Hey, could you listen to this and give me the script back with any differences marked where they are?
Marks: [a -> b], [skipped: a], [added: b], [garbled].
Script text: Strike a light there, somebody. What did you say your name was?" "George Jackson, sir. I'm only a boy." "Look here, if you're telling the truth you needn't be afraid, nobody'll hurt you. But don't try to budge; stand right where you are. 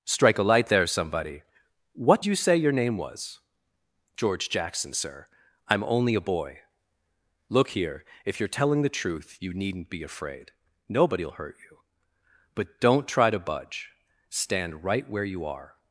Strike a light there, somebody. What [skipped: did] you say your name was?" "George Jackson, sir. I'm only a boy." "Look here, if you're telling the truth you needn't be afraid, nobody'll hurt you. But don't try to budge; stand right where you are.